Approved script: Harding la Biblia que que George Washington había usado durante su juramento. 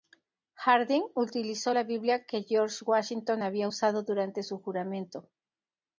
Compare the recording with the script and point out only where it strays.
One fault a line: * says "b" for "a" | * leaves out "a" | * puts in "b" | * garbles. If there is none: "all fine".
* puts in "utilizó"
* leaves out "que"